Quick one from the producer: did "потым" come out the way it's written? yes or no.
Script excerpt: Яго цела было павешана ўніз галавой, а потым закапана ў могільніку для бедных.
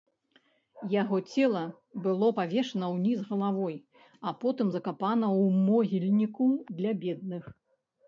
yes